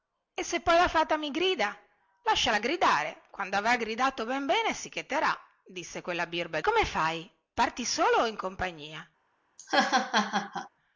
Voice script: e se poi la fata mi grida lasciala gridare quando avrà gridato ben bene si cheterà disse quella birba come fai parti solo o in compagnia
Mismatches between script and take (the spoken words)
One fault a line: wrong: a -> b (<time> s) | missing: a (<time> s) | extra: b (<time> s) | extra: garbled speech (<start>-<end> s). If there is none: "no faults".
no faults